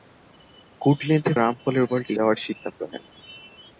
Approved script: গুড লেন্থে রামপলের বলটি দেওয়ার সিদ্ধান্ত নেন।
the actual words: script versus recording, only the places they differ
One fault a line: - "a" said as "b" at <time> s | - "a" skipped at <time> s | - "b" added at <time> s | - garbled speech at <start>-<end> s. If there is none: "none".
none